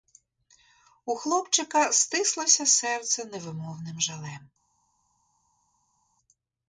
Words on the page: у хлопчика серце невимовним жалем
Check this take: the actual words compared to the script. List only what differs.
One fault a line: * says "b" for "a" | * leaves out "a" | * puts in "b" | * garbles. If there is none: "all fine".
* puts in "стислося"